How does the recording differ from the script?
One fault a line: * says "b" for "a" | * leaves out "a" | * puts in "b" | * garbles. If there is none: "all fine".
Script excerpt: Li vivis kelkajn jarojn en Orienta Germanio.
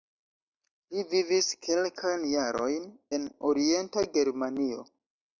all fine